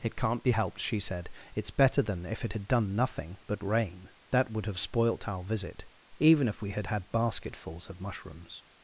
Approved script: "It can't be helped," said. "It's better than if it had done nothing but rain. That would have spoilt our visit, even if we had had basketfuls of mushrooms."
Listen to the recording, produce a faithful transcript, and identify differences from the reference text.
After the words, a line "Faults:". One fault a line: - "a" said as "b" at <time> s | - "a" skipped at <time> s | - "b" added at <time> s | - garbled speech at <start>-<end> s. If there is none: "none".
"It can't be helped," she said. "It's better than if it had done nothing but rain. That would have spoilt our visit, even if we had had basketfuls of mushrooms."
Faults:
- "she" added at 0.8 s